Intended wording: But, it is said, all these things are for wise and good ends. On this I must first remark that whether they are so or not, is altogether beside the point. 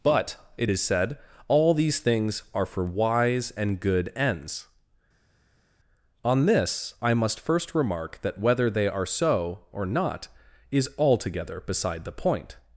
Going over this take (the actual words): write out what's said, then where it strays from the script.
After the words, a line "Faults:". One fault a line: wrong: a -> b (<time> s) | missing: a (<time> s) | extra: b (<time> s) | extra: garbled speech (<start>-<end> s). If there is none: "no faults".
But, it is said, all these things are for wise and good ends. On this I must first remark that whether they are so or not, is altogether beside the point.
Faults:
no faults